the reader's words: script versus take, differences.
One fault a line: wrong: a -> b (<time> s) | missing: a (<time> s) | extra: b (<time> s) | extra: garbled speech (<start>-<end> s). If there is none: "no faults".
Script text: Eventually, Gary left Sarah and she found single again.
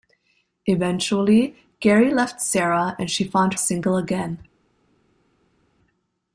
no faults